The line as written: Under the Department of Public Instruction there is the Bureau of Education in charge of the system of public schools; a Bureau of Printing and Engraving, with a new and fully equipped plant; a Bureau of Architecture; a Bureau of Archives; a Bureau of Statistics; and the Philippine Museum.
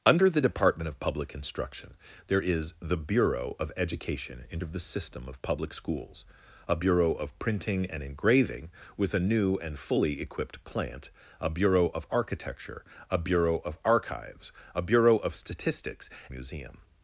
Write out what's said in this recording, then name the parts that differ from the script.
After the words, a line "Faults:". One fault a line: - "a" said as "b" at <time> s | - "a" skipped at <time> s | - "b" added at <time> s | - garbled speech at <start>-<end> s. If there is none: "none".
Under the Department of Public Instruction there is the Bureau of Education in of the system of public schools; a Bureau of Printing and Engraving, with a new and fully equipped plant; a Bureau of Architecture; a Bureau of Archives; a Bureau of Statistics; Museum.
Faults:
- "charge" skipped at 4.6 s
- "and the Philippine" skipped at 16.1 s